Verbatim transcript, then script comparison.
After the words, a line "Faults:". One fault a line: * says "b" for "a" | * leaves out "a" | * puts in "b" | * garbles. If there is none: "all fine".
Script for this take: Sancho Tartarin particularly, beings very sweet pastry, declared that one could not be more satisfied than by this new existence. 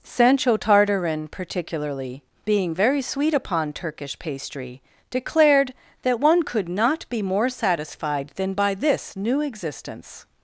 Sancho Tartarin particularly, being very sweet upon Turkish pastry, declared that one could not be more satisfied than by this new existence.
Faults:
* says "being" for "beings"
* puts in "upon Turkish"